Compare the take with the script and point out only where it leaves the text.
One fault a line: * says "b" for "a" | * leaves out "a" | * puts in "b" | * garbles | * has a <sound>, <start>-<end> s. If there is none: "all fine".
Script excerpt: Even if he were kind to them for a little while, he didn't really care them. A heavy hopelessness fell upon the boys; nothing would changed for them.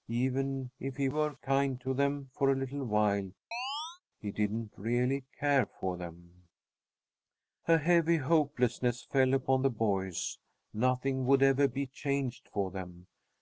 * has a chirp, 3.5-4.0 s
* puts in "for"
* puts in "ever be"